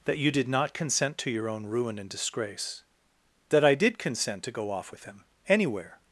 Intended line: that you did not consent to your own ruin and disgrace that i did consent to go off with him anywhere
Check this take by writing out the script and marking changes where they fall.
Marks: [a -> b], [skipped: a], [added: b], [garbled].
that you did not consent to your own ruin and disgrace that i did consent to go off with him anywhere